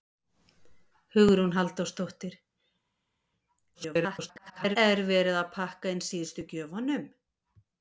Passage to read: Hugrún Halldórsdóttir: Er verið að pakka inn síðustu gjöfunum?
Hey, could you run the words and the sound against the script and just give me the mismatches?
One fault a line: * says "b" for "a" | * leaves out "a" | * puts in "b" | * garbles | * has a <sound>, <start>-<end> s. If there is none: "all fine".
* garbles